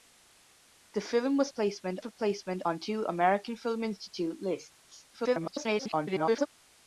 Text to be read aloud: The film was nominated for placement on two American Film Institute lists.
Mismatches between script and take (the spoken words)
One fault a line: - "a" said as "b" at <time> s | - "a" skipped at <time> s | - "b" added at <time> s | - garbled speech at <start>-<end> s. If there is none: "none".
- "nominated" said as "placement" at 1.5 s
- garbled speech at 5.1-6.5 s